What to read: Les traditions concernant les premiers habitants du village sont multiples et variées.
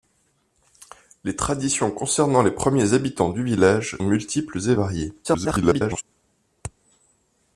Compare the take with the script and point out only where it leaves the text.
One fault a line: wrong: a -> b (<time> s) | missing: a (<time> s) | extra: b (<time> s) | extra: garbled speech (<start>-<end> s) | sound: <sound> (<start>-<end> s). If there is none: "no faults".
missing: sont (4.0 s)
extra: garbled speech (5.2-6.0 s)